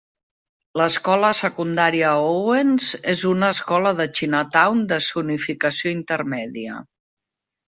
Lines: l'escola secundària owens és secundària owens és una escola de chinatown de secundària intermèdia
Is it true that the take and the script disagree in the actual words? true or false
true